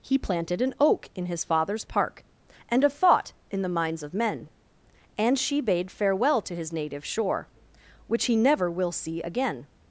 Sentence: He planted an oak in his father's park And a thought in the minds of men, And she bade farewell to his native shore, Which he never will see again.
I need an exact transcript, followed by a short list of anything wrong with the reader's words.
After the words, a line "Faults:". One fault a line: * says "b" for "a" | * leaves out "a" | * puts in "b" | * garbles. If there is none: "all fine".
He planted an oak in his father's park And a thought in the minds of men, And she bade farewell to his native shore, Which he never will see again.
Faults:
all fine